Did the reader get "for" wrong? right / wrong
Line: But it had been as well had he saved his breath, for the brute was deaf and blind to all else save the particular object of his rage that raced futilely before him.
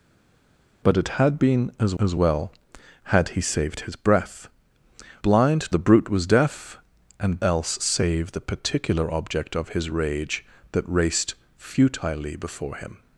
wrong